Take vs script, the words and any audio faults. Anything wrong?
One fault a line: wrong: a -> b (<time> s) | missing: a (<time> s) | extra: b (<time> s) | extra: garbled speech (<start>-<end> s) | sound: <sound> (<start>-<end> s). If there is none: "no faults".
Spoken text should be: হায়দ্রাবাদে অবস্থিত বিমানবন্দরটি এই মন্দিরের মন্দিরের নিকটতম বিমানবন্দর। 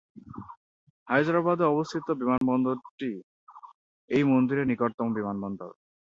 sound: dropout (2.4-2.4 s)
missing: মন্দিরের (4.7 s)